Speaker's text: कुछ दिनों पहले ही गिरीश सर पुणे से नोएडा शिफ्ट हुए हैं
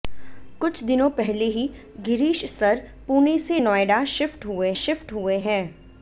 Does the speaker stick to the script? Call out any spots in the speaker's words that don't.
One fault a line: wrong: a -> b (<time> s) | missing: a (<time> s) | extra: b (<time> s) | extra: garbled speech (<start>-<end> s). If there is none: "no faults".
extra: शिफ्ट हुए (4.7 s)